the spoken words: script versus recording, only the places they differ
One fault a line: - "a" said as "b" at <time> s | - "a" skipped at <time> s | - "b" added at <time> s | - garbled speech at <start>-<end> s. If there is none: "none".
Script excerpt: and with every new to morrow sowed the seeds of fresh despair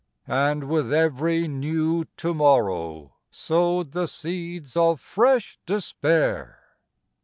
none